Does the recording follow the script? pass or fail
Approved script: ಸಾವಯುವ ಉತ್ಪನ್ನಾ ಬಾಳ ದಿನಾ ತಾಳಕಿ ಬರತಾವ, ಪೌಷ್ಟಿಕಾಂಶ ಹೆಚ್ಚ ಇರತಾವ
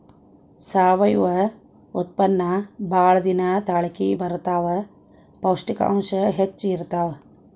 pass